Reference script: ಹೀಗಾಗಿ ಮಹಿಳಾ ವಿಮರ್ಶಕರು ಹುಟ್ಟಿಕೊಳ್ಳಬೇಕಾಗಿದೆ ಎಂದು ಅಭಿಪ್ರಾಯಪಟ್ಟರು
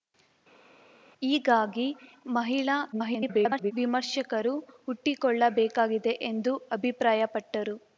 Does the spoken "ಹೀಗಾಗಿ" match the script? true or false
true